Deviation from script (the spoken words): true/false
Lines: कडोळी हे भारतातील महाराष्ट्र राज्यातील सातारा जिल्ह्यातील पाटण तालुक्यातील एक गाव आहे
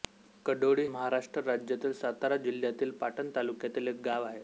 true